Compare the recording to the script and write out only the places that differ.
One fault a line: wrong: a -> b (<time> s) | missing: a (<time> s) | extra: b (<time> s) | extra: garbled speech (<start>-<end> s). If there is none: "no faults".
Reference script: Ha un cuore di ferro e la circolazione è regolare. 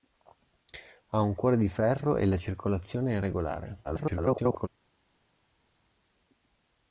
extra: garbled speech (3.8-4.7 s)